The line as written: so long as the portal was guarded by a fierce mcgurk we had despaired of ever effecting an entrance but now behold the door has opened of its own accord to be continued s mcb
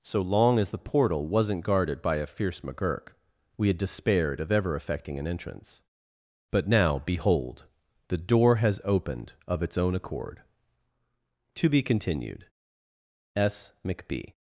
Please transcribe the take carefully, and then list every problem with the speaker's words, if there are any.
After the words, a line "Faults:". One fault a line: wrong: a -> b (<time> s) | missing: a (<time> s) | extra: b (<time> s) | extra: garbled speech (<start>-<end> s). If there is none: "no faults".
so long as the portal wasn't guarded by a fierce mcgurk we had despaired of ever effecting an entrance but now behold the door has opened of its own accord to be continued s mcb
Faults:
wrong: was -> wasn't (1.3 s)